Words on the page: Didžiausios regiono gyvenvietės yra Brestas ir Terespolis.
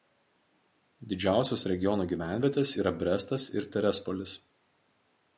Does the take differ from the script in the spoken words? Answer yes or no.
no